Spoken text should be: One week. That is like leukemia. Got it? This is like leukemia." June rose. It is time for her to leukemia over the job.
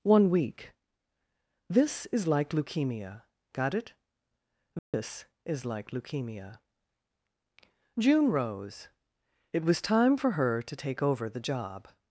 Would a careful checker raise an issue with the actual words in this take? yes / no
yes